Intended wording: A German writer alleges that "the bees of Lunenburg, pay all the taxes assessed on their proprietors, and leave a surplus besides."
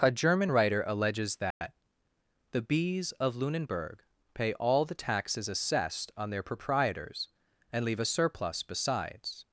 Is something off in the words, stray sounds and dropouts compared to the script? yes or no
yes